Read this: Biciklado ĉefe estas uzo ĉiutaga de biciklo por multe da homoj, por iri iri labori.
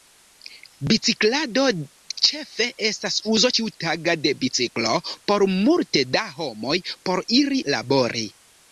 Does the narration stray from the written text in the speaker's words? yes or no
yes